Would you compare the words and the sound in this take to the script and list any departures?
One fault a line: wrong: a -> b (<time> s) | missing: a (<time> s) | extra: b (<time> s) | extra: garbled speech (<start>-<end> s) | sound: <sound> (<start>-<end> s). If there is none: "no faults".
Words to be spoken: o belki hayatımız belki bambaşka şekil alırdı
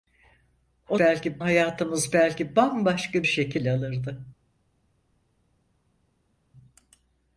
no faults